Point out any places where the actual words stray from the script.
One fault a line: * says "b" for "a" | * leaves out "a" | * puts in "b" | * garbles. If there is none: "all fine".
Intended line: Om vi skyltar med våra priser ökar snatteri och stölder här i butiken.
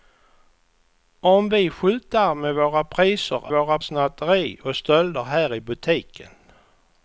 * says "våra" for "ökar"